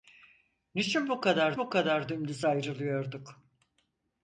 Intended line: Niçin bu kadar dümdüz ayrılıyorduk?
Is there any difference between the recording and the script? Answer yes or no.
yes